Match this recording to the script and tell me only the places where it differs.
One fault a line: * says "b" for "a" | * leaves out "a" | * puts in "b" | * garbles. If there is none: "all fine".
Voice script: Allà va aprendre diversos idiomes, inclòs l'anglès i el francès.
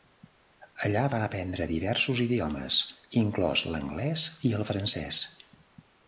all fine